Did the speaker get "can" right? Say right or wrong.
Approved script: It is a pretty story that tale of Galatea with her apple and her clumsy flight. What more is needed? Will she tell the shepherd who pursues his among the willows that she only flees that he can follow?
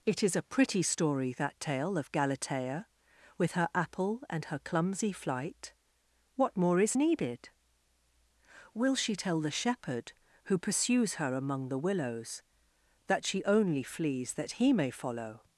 wrong